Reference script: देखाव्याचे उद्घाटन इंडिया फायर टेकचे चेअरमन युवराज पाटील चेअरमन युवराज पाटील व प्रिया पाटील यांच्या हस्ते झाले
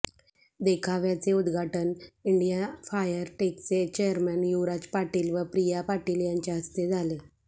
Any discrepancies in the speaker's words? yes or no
yes